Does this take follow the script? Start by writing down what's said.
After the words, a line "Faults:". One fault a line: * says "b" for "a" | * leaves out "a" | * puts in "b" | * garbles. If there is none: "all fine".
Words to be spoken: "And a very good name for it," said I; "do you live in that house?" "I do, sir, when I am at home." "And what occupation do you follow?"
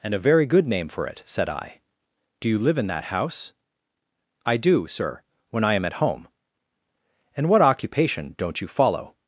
"And a very good name for it," said I; "do you live in that house?" "I do, sir, when I am at home." "And what occupation don't you follow?"
Faults:
* says "don't" for "do"